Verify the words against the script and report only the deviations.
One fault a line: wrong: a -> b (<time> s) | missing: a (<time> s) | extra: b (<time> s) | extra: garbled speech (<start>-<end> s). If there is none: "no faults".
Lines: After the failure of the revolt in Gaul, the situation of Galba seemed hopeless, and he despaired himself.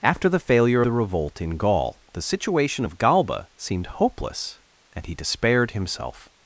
missing: of (0.8 s)